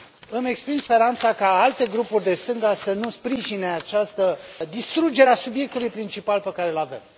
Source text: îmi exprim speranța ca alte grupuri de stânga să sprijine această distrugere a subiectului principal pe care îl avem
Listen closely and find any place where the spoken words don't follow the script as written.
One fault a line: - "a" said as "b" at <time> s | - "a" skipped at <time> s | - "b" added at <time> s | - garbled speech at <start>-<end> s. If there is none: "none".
- "nu" added at 2.9 s